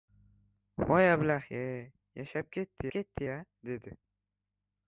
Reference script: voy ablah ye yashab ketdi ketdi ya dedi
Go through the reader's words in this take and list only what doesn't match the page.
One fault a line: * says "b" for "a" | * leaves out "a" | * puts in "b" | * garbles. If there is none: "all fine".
all fine